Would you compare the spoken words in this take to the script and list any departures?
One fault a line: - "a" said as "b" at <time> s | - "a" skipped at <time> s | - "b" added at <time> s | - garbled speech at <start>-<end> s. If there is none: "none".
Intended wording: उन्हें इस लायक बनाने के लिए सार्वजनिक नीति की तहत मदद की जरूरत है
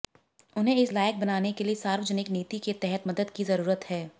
- "की" said as "के" at 2.6 s